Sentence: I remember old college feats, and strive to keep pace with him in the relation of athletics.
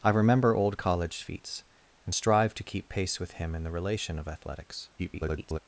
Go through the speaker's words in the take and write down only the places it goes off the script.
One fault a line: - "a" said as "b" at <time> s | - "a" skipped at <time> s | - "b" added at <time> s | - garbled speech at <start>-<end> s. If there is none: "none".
- garbled speech at 5.0-5.6 s